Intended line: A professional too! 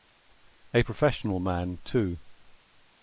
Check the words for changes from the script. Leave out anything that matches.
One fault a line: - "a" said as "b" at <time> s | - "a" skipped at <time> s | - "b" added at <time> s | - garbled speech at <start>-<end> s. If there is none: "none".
- "man" added at 1.4 s